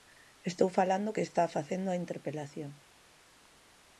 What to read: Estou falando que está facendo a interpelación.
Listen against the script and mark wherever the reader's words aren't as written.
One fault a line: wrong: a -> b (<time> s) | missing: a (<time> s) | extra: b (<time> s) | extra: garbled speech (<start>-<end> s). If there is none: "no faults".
no faults